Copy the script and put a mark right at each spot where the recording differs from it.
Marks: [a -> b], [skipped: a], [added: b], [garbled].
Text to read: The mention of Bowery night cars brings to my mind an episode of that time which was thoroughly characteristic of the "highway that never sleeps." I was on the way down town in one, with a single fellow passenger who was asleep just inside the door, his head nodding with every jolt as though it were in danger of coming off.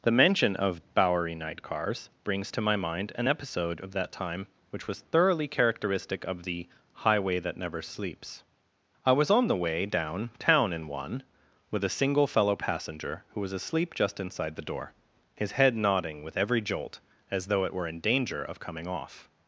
The mention of Bowery night cars brings to my mind an episode of that time which was thoroughly characteristic of the "highway that never sleeps." I was on the way down town in one, with a single fellow passenger who was asleep just inside the door, his head nodding with every jolt as though it were in danger of coming off.